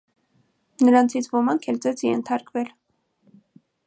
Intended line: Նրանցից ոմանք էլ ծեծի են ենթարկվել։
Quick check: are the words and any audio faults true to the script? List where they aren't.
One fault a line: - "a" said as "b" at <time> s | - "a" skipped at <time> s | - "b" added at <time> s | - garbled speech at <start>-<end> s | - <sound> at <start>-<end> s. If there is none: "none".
- "են" skipped at 2.1 s